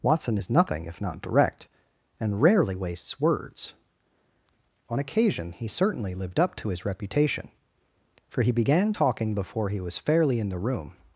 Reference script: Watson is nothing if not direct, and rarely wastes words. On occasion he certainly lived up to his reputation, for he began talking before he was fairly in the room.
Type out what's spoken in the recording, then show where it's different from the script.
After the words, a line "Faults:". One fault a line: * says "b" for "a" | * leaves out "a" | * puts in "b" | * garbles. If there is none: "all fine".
Watson is nothing if not direct, and rarely wastes words. On occasion he certainly lived up to his reputation, for he began talking before he was fairly in the room.
Faults:
all fine